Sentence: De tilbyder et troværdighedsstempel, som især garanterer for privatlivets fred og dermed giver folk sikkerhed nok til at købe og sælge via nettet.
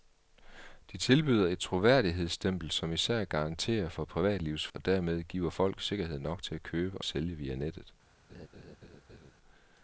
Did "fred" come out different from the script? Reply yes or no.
yes